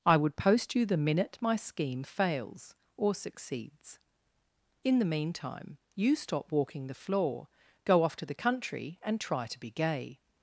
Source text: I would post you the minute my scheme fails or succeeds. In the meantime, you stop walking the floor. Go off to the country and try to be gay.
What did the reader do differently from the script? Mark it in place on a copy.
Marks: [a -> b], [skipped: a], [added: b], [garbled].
I would post you the minute my scheme fails or succeeds. In the meantime, you stop walking the floor. Go off to the country and try to be gay.